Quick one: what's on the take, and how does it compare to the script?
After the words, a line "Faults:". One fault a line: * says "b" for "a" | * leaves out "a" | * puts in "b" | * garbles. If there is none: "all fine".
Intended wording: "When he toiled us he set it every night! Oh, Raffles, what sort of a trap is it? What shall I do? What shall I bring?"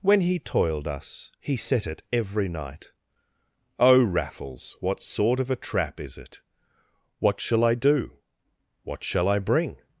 "When he toiled us he set it every night! Oh, Raffles, what sort of a trap is it? What shall I do? What shall I bring?"
Faults:
all fine